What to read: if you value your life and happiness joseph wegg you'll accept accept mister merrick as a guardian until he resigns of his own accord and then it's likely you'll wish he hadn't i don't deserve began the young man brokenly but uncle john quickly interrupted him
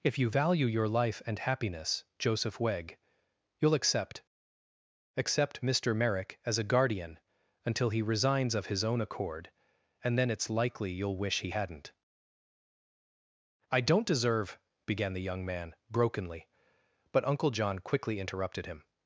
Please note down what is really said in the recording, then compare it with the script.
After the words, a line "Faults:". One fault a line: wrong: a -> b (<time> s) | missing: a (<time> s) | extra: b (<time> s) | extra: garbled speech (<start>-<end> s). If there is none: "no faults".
if you value your life and happiness joseph wegg you'll accept accept mister merrick as a guardian until he resigns of his own accord and then it's likely you'll wish he hadn't i don't deserve began the young man brokenly but uncle john quickly interrupted him
Faults:
no faults